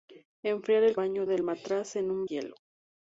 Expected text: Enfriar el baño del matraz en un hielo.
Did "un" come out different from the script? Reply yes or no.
no